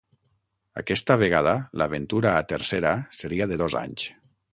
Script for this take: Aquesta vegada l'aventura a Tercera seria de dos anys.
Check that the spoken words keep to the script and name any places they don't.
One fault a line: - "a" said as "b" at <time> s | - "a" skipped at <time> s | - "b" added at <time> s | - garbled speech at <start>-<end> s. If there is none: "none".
none